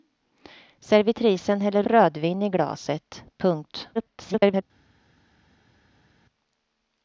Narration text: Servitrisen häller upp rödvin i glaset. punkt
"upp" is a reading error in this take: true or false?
true